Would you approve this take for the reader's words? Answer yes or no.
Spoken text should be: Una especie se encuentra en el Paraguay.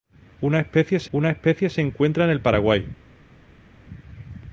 no